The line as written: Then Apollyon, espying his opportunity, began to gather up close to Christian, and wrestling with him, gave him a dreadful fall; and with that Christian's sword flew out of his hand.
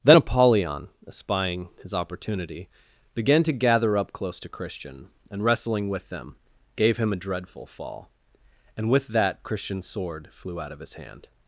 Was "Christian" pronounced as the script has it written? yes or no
yes